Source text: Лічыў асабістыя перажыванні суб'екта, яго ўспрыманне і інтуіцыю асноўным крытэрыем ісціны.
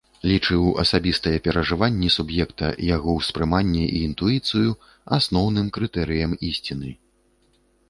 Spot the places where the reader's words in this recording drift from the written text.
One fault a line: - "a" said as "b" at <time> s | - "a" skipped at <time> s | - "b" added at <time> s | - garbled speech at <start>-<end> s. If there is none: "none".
none